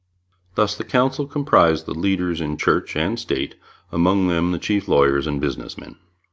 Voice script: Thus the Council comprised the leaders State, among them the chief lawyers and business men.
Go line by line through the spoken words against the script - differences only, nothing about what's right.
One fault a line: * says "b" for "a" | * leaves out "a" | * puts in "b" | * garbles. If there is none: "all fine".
* puts in "in Church and"